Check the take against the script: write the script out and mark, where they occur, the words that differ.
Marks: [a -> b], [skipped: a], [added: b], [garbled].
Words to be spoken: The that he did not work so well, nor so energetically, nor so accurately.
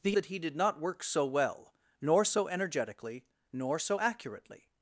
The that he did not work so well, nor so energetically, nor so accurately.